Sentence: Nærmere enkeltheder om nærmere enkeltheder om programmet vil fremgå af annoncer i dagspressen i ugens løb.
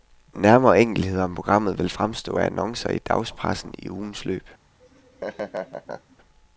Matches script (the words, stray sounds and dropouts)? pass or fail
fail